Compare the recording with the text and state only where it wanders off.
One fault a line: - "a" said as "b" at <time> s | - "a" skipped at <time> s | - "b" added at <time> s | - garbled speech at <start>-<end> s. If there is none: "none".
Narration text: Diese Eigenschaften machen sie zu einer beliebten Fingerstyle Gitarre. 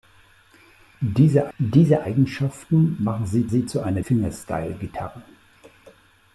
- "diese" added at 1.6 s
- "sie" added at 3.5 s
- "beliebten" skipped at 4.0 s